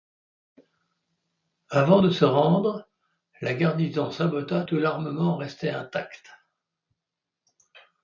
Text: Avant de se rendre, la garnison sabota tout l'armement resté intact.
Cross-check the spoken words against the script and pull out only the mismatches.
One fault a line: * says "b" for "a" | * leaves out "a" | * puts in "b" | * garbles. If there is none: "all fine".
all fine